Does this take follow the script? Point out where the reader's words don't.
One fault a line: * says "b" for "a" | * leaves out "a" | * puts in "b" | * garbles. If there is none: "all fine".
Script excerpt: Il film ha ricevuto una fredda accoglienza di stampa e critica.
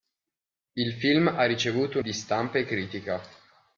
* leaves out "una fredda accoglienza"